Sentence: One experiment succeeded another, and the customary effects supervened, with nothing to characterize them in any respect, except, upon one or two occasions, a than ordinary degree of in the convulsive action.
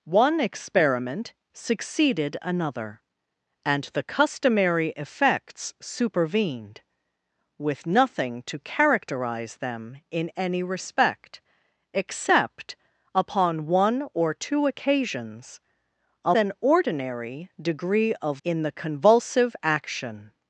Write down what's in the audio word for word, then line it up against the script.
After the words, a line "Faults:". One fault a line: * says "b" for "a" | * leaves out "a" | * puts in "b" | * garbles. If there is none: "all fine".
One experiment succeeded another, and the customary effects supervened, with nothing to characterize them in any respect, except, upon one or two occasions, a than ordinary degree of in the convulsive action.
Faults:
all fine